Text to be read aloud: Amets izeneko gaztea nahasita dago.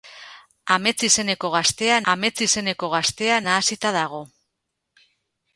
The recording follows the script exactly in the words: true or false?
false